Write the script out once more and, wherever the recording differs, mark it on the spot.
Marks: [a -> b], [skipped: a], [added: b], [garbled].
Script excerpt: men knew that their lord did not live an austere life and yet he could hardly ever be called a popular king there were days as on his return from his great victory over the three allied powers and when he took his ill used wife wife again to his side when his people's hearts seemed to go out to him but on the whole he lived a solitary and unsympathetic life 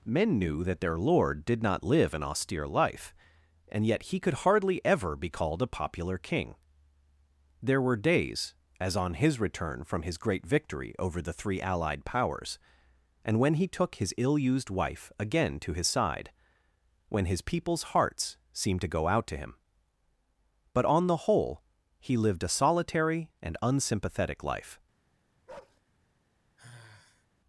men knew that their lord did not live an austere life and yet he could hardly ever be called a popular king there were days as on his return from his great victory over the three allied powers and when he took his ill used wife [skipped: wife] again to his side when his people's hearts seemed to go out to him but on the whole he lived a solitary and unsympathetic life